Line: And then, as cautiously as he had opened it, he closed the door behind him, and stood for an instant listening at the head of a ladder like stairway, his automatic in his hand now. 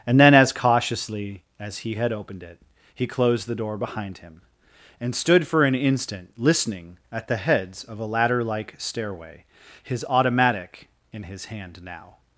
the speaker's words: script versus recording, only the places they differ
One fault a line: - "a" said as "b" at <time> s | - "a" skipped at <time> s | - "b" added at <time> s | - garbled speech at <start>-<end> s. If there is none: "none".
- "head" said as "heads" at 7.4 s